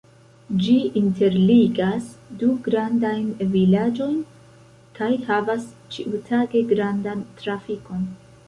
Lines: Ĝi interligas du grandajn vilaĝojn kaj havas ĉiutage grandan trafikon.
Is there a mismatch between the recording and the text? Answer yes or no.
no